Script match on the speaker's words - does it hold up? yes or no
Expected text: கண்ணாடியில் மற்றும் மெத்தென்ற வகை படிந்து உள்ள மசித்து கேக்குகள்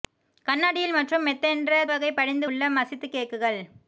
yes